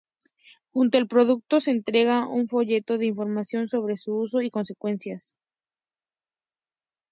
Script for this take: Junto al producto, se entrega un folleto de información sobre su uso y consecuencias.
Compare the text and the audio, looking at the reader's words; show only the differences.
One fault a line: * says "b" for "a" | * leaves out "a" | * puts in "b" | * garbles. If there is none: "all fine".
all fine